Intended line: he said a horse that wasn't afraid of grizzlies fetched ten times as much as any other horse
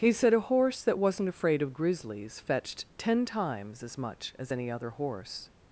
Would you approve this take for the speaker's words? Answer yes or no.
yes